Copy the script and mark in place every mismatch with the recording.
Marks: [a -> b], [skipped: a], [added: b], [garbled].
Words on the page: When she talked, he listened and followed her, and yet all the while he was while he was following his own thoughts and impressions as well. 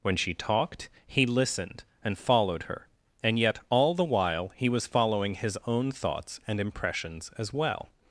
When she talked, he listened and followed her, and yet all the while he was [skipped: while he was] following his own thoughts and impressions as well.